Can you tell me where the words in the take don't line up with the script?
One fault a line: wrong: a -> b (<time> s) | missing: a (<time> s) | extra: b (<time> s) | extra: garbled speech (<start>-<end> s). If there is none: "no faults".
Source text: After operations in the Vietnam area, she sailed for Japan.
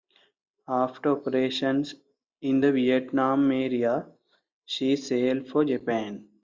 no faults